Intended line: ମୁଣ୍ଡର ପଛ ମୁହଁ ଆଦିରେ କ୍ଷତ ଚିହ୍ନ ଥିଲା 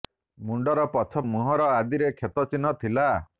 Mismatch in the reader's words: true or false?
false